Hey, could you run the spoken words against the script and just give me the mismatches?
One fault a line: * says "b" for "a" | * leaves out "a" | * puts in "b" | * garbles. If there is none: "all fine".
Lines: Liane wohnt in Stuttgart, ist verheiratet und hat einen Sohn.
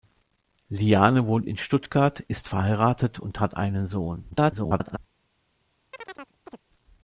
* garbles